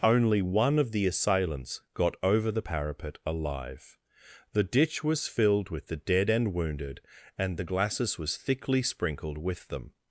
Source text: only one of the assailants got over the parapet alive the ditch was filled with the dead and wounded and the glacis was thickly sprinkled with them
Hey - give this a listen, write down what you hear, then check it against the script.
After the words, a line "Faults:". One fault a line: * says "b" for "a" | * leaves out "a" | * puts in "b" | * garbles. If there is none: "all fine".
only one of the assailants got over the parapet alive the ditch was filled with the dead and wounded and the glacis was thickly sprinkled with them
Faults:
all fine